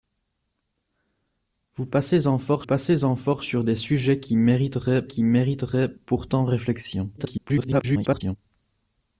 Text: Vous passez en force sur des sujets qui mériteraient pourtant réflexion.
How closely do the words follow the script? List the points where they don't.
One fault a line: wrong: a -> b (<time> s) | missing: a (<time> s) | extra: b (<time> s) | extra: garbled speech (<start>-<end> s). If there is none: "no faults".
extra: passez en force (2.6 s)
extra: qui mériteraient (5.1 s)
extra: garbled speech (7.2-8.4 s)